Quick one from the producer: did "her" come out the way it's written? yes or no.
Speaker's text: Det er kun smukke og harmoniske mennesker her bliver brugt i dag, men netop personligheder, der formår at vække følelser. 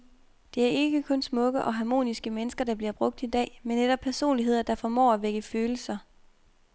no